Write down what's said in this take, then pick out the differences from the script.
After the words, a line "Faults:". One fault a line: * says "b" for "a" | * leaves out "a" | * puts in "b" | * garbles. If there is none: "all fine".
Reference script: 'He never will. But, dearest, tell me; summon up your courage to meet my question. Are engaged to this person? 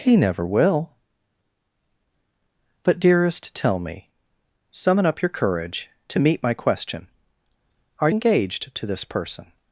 'He never will. But, dearest, tell me; summon up your courage to meet my question. Are engaged to this person?
Faults:
all fine